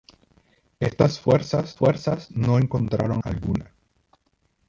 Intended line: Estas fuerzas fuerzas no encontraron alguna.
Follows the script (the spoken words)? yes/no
yes